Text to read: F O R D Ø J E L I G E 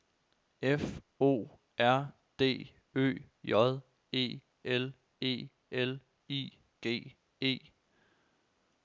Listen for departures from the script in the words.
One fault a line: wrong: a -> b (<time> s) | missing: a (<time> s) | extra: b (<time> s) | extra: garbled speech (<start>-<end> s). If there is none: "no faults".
extra: E L (5.2 s)